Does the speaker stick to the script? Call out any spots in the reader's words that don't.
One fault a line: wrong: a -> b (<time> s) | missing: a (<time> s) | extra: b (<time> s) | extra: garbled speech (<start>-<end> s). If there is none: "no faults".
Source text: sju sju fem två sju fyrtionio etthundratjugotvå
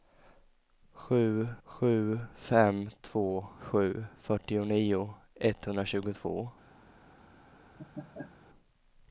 no faults